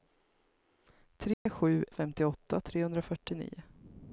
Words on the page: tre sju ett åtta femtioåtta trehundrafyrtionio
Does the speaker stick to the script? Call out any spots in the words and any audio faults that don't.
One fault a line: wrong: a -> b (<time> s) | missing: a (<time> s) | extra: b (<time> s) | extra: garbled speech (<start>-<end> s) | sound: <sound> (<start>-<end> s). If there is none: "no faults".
sound: dropout (1.3-1.5 s)
missing: ett åtta (1.9 s)